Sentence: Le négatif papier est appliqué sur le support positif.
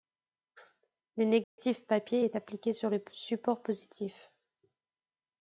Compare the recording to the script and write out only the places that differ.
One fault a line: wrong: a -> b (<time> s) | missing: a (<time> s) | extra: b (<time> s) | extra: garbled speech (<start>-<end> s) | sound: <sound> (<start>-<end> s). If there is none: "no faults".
sound: dropout (1.4-1.6 s)